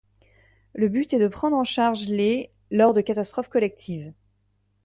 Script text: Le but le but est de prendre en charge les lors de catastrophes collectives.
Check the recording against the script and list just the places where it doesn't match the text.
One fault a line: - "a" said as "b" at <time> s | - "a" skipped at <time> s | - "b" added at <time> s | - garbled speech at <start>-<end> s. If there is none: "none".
- "le but" skipped at 1.1 s